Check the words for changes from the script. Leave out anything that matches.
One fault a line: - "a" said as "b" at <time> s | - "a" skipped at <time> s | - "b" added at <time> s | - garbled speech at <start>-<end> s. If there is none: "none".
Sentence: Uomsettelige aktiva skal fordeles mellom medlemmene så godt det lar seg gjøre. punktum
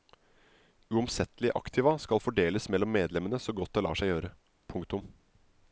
none